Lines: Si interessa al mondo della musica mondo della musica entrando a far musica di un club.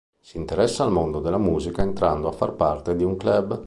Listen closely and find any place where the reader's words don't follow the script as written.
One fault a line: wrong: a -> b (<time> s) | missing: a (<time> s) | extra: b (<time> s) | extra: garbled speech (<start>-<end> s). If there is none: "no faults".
missing: mondo della musica (1.8 s)
wrong: musica -> parte (2.5 s)